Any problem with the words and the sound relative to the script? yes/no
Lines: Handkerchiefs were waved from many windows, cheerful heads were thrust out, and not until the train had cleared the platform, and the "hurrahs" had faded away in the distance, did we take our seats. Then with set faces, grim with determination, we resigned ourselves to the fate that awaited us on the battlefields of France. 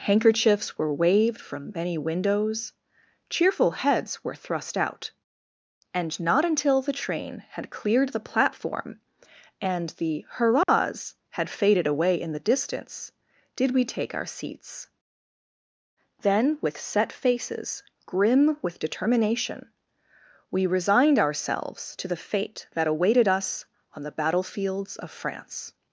yes